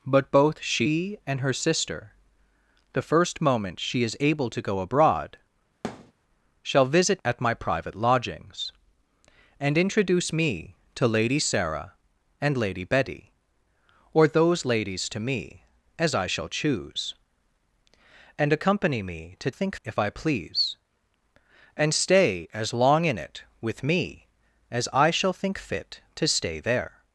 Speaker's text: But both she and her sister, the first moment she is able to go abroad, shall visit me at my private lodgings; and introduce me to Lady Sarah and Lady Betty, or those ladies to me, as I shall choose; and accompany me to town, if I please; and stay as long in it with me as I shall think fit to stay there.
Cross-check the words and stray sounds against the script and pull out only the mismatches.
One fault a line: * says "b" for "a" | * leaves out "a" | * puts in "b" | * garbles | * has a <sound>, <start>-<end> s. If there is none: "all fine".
* has a thud, 5.8-6.1 s
* leaves out "me"
* says "think" for "town"